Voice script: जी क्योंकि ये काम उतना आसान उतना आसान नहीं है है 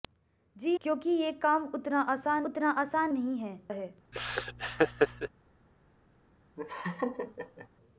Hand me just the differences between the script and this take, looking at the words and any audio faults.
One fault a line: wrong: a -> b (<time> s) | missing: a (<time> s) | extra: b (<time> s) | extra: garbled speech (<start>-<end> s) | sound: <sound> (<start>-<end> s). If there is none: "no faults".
sound: laugh (4.1-5.3 s)
sound: laugh (6.6-7.7 s)